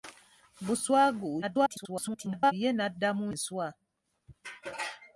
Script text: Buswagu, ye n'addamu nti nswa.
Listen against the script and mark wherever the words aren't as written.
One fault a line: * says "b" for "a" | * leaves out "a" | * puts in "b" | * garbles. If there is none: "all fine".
* garbles
* leaves out "nti"